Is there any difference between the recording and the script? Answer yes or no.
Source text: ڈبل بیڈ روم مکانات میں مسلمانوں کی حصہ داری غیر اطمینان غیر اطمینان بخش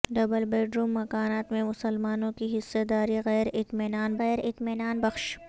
no